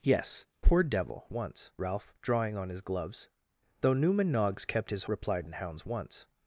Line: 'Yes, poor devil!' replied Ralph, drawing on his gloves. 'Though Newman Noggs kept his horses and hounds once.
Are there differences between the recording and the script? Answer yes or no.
yes